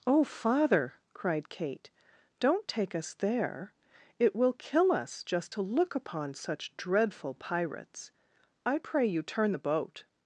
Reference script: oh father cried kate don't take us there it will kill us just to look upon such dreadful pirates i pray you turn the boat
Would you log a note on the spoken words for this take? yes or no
no